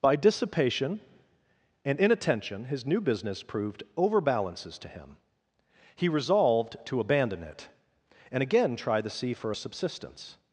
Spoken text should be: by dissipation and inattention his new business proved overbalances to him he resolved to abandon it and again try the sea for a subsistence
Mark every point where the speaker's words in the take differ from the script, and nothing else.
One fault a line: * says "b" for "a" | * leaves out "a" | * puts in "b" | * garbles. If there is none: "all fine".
all fine